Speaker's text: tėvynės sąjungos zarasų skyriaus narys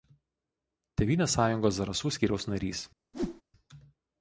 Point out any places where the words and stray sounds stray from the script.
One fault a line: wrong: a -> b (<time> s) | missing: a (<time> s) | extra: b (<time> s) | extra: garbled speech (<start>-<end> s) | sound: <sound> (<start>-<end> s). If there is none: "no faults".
sound: whoosh (3.1-3.4 s)